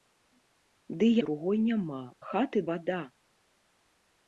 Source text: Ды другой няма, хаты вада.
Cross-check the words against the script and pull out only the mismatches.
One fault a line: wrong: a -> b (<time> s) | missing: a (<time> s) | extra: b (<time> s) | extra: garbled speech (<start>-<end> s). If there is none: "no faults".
no faults